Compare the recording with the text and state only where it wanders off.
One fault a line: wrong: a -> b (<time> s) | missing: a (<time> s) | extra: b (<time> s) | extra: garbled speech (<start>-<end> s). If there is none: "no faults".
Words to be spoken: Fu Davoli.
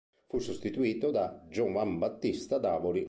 extra: sostituito da Giovanbattista (0.4 s)